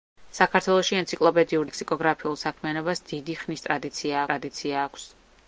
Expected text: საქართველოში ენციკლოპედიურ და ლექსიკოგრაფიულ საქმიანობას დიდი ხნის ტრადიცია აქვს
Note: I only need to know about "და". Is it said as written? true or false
false